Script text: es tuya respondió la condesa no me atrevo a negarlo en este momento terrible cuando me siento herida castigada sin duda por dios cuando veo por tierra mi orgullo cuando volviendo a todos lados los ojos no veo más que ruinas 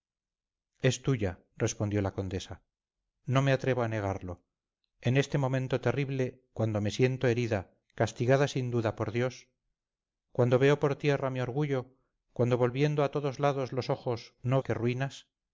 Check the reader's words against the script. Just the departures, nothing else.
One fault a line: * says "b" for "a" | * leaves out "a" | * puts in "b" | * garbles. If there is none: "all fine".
* leaves out "veo más"